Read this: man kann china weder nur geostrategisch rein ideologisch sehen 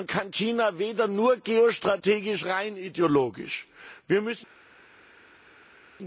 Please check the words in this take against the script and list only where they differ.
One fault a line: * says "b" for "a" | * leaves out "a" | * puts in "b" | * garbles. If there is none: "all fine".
all fine